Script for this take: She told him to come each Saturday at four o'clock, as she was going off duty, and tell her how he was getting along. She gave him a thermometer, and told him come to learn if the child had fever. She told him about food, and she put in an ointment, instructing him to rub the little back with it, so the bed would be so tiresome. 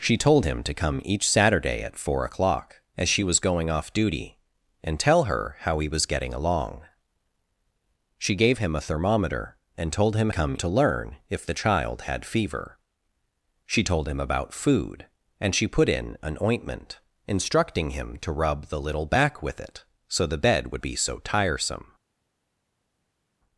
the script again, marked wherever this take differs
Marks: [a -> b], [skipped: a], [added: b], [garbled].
She told him to come each Saturday at four o'clock, as she was going off duty, and tell her how he was getting along. She gave him a thermometer, and told him come to learn if the child had fever. She told him about food, and she put in an ointment, instructing him to rub the little back with it, so the bed would be so tiresome.